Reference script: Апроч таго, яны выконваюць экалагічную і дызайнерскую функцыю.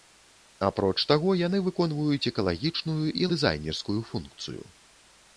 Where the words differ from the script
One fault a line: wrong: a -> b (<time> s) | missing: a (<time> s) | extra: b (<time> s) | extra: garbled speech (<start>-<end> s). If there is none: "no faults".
no faults